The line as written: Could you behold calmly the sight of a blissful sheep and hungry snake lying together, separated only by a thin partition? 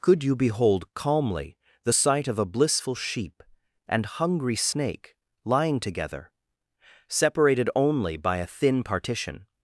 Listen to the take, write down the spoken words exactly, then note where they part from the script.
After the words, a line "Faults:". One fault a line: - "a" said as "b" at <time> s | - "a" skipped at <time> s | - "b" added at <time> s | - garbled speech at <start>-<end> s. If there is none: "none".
Could you behold calmly the sight of a blissful sheep and hungry snake lying together, separated only by a thin partition?
Faults:
none